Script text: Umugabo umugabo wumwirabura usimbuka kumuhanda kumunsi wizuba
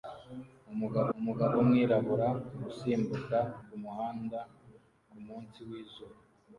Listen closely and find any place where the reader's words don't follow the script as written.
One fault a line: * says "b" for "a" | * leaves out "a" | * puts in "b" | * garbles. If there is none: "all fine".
all fine